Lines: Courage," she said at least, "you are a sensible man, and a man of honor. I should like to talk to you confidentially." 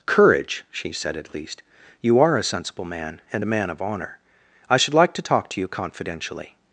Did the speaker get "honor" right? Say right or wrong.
right